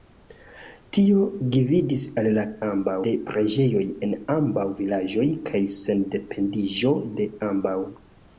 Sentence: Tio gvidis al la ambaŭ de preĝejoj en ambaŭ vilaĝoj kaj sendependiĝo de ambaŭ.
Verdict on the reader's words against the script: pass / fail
pass